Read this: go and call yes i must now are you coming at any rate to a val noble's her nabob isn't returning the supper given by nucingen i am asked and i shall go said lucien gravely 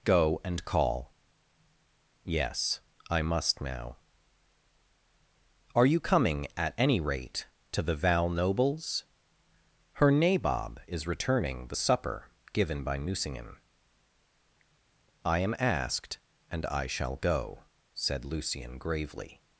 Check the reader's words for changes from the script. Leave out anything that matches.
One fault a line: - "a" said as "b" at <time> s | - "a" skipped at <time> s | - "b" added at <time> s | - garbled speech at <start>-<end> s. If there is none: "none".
- "a" said as "the" at 7.8 s
- "isn't" said as "is" at 10.9 s